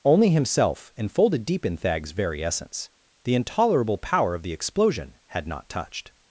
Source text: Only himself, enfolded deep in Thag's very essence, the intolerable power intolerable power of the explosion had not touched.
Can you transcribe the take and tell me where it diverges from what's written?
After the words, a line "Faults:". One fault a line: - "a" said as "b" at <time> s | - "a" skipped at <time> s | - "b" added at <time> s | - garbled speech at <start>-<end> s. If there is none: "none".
Only himself, enfolded deep in Thag's very essence, the intolerable power of the explosion had not touched.
Faults:
- "intolerable power" skipped at 4.3 s